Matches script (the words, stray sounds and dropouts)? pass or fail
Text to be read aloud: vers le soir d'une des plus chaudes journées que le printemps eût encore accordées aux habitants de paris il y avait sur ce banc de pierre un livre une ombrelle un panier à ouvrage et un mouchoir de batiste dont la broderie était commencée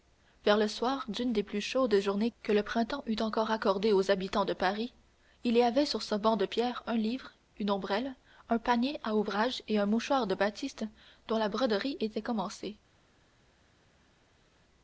pass